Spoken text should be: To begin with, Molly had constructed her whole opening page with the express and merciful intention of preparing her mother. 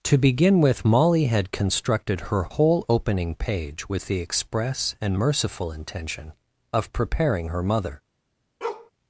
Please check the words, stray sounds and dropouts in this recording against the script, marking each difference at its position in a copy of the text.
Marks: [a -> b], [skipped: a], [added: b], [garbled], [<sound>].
To begin with, Molly had constructed her whole opening page with the express and merciful intention of preparing her mother. [bark]